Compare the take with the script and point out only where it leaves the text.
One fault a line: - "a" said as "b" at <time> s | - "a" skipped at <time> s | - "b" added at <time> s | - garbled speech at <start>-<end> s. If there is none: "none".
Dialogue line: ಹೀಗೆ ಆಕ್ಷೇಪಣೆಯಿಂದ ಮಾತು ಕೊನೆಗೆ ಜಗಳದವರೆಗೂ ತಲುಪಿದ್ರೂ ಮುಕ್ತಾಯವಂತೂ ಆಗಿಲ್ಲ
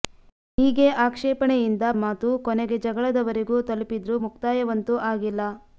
none